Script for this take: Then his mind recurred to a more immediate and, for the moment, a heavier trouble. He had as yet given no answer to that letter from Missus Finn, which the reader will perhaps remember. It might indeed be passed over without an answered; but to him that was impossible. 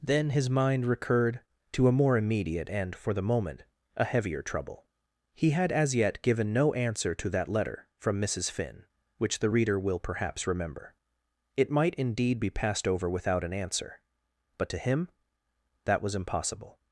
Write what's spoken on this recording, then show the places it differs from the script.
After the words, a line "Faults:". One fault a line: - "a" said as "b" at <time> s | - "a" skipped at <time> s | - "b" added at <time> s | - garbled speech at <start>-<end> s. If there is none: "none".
Then his mind recurred to a more immediate and, for the moment, a heavier trouble. He had as yet given no answer to that letter from Missus Finn, which the reader will perhaps remember. It might indeed be passed over without an answer; but to him that was impossible.
Faults:
- "answered" said as "answer" at 13.5 s